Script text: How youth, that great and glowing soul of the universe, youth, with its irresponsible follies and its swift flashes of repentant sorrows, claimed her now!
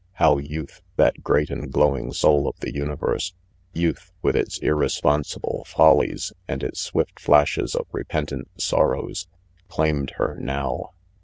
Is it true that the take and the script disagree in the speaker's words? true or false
false